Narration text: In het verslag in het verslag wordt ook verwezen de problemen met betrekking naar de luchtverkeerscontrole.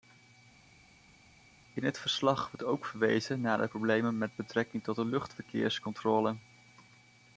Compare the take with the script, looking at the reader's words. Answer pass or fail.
fail